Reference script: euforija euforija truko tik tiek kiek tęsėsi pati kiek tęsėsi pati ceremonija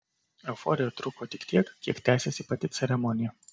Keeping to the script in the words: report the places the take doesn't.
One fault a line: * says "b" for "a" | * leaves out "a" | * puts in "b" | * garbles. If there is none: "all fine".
* leaves out "euforija"
* leaves out "kiek tęsėsi pati"